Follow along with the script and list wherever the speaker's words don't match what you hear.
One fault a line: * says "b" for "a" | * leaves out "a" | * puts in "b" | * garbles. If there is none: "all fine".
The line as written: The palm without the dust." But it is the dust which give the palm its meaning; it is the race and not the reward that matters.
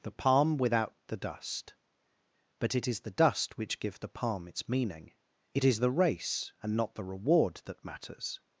all fine